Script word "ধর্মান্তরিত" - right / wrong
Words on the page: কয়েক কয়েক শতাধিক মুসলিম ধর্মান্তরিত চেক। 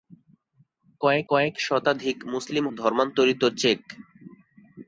right